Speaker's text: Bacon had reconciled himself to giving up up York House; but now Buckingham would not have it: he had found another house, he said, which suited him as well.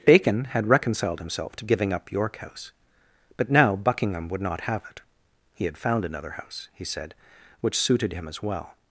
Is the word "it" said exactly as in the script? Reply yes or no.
yes